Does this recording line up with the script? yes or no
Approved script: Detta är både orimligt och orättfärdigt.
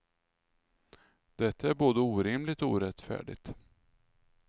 yes